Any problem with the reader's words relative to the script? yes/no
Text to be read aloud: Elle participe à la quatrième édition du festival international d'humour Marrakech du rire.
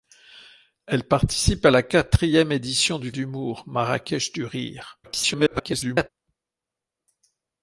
yes